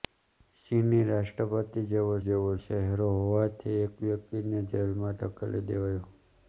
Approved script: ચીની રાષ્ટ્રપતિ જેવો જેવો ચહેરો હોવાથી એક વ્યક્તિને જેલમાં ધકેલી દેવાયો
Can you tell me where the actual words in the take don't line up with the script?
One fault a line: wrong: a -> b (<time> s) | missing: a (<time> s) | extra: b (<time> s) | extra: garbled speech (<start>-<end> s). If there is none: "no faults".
no faults